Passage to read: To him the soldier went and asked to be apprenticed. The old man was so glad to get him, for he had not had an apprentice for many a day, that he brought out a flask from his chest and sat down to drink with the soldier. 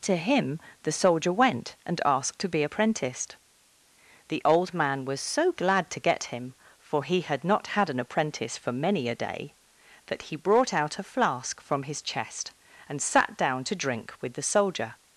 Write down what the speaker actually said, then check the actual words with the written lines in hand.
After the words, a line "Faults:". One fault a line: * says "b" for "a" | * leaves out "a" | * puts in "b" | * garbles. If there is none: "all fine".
To him the soldier went and asked to be apprenticed. The old man was so glad to get him, for he had not had an apprentice for many a day, that he brought out a flask from his chest and sat down to drink with the soldier.
Faults:
all fine